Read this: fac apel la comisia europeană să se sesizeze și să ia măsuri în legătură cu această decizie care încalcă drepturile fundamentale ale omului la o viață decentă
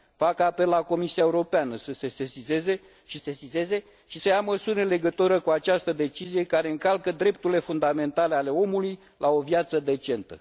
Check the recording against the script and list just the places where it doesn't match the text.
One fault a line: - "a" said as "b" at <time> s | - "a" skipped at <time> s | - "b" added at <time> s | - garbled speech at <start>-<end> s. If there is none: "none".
- "sesizeze și" added at 3.2 s